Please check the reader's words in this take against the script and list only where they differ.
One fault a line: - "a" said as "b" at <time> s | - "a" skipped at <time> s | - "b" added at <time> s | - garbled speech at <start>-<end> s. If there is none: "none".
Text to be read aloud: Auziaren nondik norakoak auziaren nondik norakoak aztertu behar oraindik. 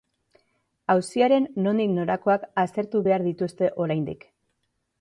- "auziaren nondik norakoak" skipped at 2.5 s
- "dituzte" added at 3.3 s